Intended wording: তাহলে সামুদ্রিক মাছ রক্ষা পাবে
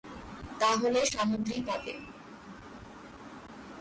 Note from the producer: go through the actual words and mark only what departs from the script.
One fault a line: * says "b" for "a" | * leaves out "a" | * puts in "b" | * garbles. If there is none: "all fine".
* leaves out "মাছ রক্ষা"